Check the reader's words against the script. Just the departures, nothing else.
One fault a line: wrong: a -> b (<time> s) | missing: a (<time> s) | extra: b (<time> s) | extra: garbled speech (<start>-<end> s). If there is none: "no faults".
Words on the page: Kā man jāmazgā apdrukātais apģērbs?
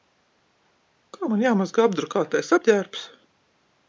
no faults